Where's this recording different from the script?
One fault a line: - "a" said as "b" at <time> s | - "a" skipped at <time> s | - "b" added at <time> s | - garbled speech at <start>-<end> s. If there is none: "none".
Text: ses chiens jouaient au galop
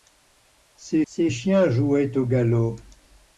- "ses" added at 1.0 s